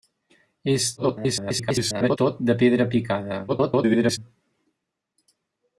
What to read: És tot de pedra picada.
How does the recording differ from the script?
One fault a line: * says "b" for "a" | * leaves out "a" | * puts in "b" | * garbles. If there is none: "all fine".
* garbles
* garbles